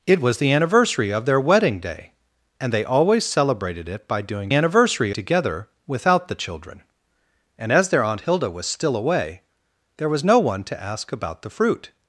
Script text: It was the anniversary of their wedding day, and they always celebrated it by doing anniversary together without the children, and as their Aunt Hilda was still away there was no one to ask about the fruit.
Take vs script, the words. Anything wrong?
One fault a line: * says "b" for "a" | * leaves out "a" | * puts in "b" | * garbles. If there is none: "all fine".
all fine